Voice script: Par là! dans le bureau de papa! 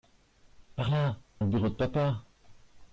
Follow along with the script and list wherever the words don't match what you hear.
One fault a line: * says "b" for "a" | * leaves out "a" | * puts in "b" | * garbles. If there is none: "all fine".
* leaves out "dans"